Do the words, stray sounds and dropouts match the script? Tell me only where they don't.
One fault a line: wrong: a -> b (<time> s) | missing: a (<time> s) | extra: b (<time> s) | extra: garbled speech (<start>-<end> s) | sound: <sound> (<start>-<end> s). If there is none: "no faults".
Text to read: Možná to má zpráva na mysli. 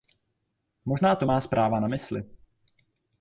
no faults